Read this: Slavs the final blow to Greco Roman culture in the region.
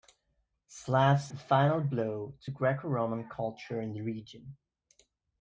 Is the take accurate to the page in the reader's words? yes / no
yes